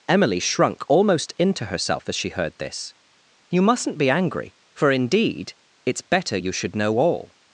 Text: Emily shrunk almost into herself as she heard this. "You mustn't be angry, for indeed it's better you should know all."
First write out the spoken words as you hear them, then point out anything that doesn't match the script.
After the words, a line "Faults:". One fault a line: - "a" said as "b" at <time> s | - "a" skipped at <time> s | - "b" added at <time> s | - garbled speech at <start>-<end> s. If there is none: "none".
Emily shrunk almost into herself as she heard this. "You mustn't be angry, for indeed it's better you should know all."
Faults:
none